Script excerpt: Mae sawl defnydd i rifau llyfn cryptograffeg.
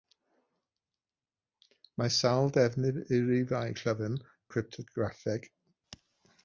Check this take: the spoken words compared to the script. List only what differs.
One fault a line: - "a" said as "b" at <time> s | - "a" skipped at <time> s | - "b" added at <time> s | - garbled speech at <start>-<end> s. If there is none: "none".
none